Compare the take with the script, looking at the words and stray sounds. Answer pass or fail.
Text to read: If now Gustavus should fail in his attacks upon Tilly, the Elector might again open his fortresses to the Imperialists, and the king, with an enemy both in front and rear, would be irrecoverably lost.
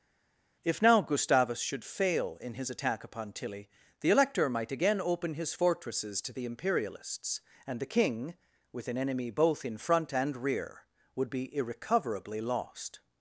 fail